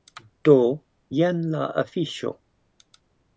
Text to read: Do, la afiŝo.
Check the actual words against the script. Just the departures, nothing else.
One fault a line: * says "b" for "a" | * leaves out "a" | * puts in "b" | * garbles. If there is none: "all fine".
* puts in "jen"